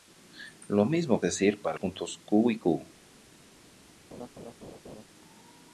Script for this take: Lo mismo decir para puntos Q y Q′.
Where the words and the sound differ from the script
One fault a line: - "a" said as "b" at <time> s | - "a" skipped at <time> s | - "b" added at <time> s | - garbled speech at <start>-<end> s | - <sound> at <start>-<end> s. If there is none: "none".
- laugh at 4.1-5.0 s